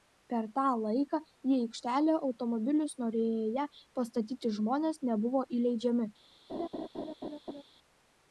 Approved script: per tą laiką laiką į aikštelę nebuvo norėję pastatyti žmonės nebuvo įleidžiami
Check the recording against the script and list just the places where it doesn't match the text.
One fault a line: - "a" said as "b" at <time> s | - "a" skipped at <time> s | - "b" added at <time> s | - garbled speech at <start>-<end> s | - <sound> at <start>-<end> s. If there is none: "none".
- "laiką" skipped at 1.2 s
- "nebuvo" said as "automobilius" at 2.3 s
- laugh at 6.5-7.6 s